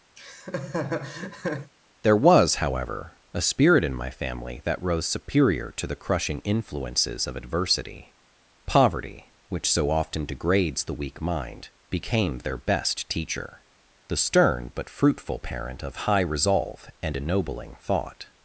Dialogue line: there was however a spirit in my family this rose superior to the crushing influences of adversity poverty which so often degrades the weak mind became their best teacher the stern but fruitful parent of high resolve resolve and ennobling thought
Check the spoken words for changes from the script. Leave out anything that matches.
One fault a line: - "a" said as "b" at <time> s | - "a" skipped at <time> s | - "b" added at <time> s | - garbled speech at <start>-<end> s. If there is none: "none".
- "this" said as "that" at 4.6 s
- "resolve" skipped at 16.9 s